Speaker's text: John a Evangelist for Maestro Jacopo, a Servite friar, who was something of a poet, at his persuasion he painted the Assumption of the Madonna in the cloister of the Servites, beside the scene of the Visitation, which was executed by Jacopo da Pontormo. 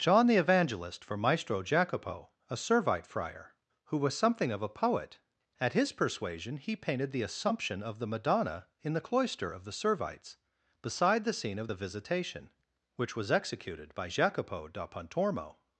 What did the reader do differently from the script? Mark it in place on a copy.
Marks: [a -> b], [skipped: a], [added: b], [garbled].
John [a -> the] Evangelist for Maestro Jacopo, a Servite friar, who was something of a poet, at his persuasion he painted the Assumption of the Madonna in the cloister of the Servites, beside the scene of the Visitation, which was executed by Jacopo da Pontormo.